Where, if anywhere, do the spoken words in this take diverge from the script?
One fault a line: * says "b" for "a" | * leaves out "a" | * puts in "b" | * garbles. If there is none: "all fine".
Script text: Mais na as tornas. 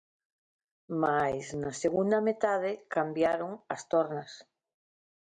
* puts in "segunda metade cambiaron"